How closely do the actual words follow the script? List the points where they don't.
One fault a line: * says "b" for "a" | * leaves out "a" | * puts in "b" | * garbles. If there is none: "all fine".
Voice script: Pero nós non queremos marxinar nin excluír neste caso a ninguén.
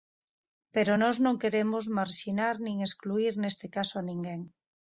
all fine